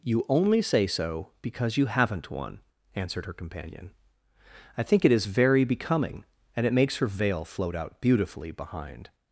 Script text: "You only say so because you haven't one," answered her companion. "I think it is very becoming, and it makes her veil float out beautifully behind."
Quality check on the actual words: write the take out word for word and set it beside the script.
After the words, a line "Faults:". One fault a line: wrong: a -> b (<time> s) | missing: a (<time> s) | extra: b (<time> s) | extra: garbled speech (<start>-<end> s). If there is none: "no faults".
"You only say so because you haven't one," answered her companion. "I think it is very becoming, and it makes her veil float out beautifully behind."
Faults:
no faults